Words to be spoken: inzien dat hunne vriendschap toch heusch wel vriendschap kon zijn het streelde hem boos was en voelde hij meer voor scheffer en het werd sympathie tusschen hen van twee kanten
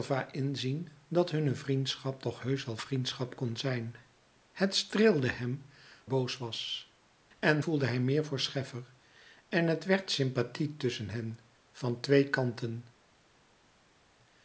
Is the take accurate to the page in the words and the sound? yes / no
yes